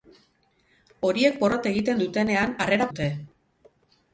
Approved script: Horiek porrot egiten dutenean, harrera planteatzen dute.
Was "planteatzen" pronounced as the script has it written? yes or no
no